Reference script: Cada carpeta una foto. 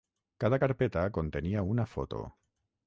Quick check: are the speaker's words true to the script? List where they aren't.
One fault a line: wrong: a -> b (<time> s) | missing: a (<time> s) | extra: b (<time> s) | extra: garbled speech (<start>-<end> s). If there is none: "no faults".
extra: contenia (1.1 s)